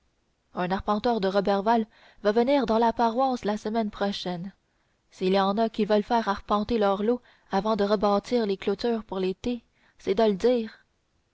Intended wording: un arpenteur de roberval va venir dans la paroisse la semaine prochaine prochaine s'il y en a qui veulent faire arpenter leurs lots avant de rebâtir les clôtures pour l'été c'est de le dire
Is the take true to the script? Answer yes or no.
no